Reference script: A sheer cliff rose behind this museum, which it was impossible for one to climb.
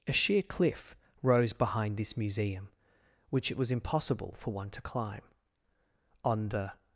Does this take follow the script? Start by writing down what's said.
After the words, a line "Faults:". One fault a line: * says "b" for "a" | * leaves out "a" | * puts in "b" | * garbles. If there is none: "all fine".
A sheer cliff rose behind this museum, which it was impossible for one to climb. On the
Faults:
* puts in "On the"